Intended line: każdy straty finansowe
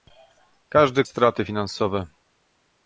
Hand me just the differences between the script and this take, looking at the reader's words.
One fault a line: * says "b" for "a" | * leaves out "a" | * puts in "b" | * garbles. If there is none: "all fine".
all fine